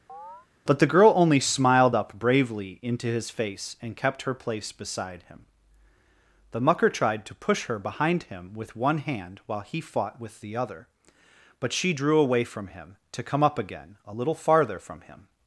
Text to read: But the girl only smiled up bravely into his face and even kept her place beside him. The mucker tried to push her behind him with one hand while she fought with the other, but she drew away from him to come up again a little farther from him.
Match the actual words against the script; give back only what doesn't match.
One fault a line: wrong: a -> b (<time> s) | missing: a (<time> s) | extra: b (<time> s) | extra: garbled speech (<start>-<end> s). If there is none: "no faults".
missing: even (4.0 s)
wrong: she -> he (9.6 s)